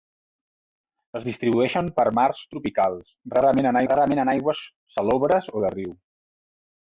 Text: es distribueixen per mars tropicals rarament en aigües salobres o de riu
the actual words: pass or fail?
fail